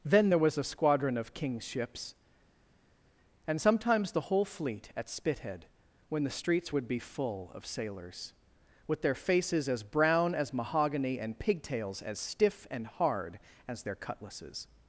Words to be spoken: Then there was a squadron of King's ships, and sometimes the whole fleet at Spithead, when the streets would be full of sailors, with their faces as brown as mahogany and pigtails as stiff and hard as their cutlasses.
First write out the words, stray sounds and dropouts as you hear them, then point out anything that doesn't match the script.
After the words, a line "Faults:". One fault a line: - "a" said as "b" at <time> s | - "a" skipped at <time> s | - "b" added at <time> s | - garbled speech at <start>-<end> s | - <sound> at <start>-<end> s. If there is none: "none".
Then there was a squadron of King's ships, and sometimes the whole fleet at Spithead, when the streets would be full of sailors, with their faces as brown as mahogany and pigtails as stiff and hard as their cutlasses.
Faults:
none